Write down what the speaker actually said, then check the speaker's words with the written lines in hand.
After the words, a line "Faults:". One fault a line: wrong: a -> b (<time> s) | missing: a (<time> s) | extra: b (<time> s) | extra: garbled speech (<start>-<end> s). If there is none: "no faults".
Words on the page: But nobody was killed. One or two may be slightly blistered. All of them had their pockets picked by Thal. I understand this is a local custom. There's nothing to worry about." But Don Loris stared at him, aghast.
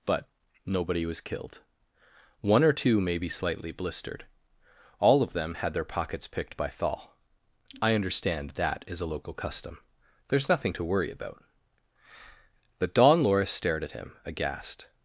But nobody was killed. One or two may be slightly blistered. All of them had their pockets picked by Thal. I understand that is a local custom. There's nothing to worry about." But Don Loris stared at him, aghast.
Faults:
wrong: this -> that (8.5 s)